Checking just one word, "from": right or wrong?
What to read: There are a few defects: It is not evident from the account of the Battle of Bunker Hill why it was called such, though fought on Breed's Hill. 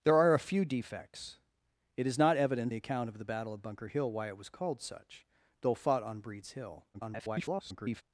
wrong